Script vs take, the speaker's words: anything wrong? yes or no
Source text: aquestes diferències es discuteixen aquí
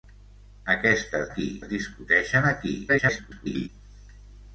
yes